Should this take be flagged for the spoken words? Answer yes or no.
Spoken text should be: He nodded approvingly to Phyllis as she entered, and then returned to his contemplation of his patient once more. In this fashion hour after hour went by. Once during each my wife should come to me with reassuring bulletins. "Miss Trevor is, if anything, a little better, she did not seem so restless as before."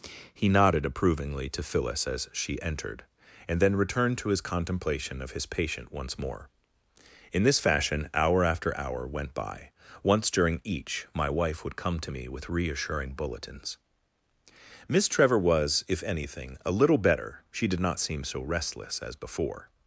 yes